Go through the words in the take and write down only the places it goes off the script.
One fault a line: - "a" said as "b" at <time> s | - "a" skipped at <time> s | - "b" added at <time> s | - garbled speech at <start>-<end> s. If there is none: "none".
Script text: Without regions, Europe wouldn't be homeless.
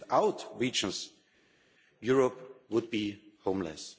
- "wouldn't" said as "would" at 2.7 s